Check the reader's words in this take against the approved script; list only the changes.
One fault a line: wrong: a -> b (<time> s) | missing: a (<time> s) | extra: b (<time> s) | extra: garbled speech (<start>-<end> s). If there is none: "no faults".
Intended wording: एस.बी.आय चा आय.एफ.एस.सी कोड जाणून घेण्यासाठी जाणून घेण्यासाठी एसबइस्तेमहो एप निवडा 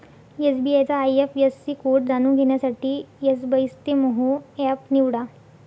missing: जाणून घेण्यासाठी (3.0 s)